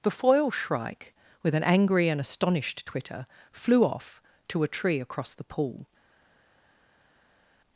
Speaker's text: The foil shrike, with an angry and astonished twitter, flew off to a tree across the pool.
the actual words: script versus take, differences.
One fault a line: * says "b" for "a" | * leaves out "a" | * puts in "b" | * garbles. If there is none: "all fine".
all fine